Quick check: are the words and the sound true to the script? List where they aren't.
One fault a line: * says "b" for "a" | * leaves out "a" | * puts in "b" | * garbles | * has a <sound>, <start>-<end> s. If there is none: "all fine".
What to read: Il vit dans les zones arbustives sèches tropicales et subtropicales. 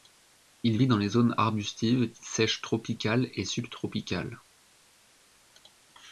all fine